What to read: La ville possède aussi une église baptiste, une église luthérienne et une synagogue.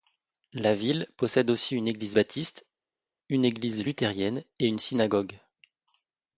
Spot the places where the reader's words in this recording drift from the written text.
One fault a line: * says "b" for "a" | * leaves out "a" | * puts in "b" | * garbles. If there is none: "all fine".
all fine